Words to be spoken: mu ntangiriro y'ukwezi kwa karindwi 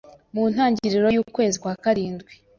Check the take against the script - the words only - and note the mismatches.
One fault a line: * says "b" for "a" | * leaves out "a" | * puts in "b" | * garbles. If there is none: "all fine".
all fine